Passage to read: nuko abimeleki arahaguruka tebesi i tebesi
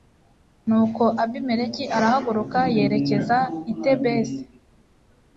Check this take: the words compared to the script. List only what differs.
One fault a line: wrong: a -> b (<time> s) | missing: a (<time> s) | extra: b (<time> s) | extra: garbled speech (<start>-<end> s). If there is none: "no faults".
wrong: tebesi -> yerekeza (2.8 s)